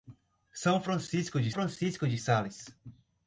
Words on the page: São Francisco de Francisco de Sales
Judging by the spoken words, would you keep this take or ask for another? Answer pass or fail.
pass